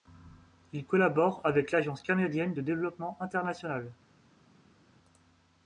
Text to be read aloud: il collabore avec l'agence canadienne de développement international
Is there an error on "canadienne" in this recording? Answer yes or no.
no